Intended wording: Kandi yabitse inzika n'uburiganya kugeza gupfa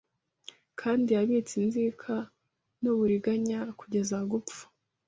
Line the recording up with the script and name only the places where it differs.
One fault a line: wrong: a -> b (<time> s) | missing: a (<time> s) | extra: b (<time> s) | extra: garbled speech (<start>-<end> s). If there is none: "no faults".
no faults